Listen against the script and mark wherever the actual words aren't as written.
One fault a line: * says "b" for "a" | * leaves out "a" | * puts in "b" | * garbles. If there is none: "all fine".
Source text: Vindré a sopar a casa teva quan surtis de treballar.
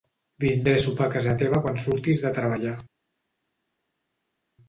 all fine